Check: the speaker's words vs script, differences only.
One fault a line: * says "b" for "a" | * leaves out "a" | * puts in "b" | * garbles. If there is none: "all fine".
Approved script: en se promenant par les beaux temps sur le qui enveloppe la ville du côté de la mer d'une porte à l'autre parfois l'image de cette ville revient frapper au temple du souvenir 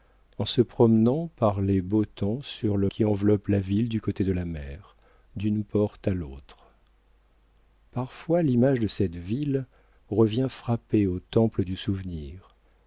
all fine